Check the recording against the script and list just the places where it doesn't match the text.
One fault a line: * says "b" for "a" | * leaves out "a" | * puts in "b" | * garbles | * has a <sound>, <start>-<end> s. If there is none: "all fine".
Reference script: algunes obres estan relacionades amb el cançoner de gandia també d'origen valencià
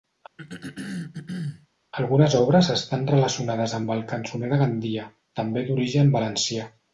* has a throat clearing, 0.4-1.7 s